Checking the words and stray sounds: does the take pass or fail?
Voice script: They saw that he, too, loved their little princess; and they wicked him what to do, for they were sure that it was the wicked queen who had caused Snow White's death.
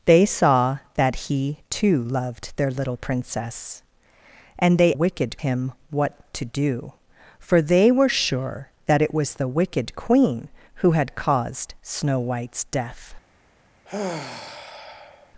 fail